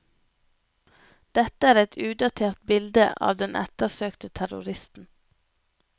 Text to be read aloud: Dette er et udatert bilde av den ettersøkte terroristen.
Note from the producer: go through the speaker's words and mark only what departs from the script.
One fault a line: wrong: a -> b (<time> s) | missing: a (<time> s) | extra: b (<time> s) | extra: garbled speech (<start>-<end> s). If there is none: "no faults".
no faults